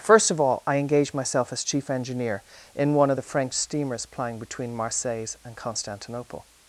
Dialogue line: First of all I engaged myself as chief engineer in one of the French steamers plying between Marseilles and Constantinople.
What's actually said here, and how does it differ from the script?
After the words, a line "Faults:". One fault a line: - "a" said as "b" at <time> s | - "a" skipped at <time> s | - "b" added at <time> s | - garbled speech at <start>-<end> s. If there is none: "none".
First of all I engaged myself as chief engineer in one of the French steamers plying between Marseilles and Constantinople.
Faults:
none